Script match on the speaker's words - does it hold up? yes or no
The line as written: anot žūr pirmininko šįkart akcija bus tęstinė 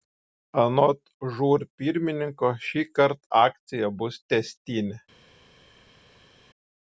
yes